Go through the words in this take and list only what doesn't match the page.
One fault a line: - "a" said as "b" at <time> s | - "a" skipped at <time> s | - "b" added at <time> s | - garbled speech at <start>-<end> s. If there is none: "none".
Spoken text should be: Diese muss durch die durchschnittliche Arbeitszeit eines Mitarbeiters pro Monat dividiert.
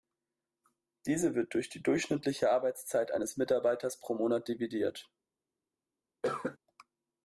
- "muss" said as "wird" at 1.4 s